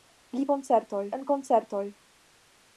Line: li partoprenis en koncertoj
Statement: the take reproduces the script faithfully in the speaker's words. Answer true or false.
false